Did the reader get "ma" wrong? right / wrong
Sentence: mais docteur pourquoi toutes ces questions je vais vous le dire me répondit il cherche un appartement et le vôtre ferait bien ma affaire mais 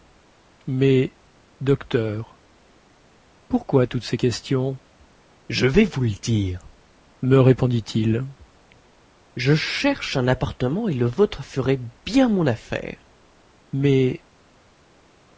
wrong